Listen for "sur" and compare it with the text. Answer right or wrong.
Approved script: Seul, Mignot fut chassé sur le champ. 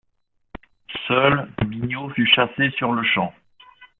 right